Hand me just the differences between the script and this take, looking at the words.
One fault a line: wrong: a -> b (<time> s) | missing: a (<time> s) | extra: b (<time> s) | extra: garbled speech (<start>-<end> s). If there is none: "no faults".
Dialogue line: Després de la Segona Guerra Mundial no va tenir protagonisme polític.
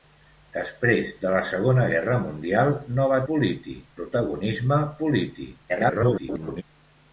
wrong: tenir -> polític (3.3 s)
extra: garbled speech (5.7-6.6 s)